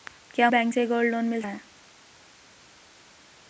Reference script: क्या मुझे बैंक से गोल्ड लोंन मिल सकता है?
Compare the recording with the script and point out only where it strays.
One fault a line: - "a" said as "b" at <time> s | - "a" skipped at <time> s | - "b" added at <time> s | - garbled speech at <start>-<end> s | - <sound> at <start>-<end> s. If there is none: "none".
- "मुझे" skipped at 0.5 s
- "सकता" skipped at 1.4 s